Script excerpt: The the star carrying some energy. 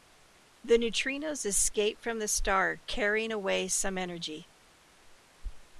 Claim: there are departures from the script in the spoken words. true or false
true